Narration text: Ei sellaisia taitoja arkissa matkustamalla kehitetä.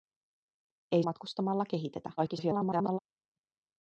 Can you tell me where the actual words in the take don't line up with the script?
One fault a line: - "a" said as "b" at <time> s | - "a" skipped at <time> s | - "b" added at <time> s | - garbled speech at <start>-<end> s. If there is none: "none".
- "sellaisia taitoja arkissa" skipped at 1.0 s
- garbled speech at 2.2-3.0 s